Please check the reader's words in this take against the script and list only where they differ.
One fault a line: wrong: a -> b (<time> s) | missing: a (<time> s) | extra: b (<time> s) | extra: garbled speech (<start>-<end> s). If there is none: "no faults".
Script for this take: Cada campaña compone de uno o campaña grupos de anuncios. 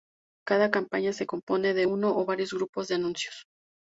extra: se (1.1 s)
wrong: campaña -> varios (2.2 s)